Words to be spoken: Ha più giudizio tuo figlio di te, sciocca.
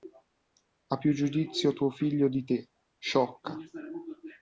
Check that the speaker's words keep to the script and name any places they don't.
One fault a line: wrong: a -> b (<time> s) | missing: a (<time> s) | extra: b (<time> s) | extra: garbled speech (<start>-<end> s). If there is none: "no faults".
no faults